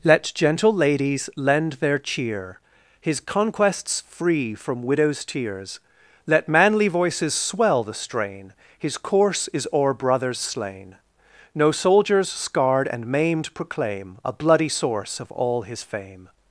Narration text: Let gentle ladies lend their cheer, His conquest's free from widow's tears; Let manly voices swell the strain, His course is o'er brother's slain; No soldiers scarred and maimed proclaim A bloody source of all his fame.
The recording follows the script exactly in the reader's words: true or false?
true